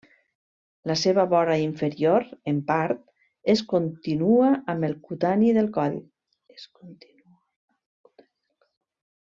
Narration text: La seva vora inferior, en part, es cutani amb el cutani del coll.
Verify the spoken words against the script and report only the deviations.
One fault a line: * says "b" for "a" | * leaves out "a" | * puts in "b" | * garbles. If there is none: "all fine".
* says "continua" for "cutani"